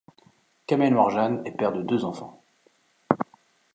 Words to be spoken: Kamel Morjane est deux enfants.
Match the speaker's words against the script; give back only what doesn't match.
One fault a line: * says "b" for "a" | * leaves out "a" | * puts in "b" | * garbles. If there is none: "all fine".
* puts in "père de"